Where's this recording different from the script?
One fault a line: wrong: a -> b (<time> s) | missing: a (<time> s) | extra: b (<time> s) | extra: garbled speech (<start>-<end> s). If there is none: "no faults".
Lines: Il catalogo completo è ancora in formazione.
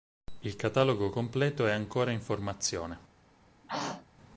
no faults